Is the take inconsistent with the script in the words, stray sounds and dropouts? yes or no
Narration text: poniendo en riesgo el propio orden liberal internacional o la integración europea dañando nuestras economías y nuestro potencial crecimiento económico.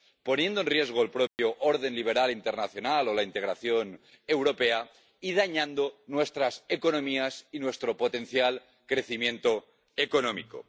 yes